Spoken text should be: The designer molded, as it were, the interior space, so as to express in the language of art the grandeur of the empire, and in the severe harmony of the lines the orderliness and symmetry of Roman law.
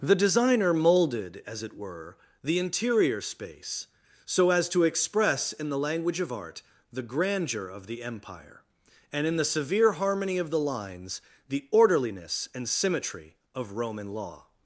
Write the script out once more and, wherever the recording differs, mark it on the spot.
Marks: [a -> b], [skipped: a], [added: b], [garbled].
The designer molded, as it were, the interior space, so as to express in the language of art the grandeur of the empire, and in the severe harmony of the lines the orderliness and symmetry of Roman law.